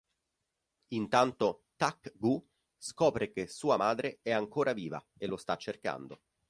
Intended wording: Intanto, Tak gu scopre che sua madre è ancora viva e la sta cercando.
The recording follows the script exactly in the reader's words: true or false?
false